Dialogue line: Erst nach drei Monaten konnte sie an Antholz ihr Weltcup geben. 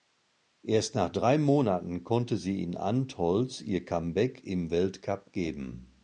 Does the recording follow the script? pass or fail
fail